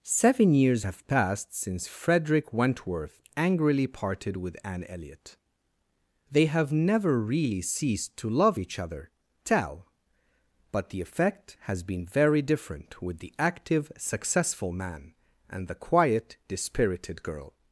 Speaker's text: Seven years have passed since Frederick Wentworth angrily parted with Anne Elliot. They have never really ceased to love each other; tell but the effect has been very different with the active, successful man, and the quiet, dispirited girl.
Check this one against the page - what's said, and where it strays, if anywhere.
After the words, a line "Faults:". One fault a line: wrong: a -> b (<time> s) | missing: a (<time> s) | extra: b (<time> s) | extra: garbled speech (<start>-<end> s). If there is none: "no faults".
Seven years have passed since Frederick Wentworth angrily parted with Anne Elliot. They have never really ceased to love each other; tell but the effect has been very different with the active, successful man, and the quiet, dispirited girl.
Faults:
no faults